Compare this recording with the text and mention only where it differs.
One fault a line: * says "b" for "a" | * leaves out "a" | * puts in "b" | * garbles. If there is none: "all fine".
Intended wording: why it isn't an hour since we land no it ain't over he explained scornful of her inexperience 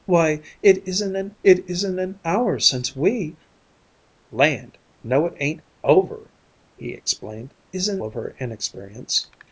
* puts in "it isn't an"
* says "isn't" for "scornful"